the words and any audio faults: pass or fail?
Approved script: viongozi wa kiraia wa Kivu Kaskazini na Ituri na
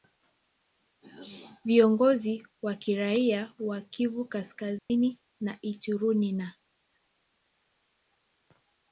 fail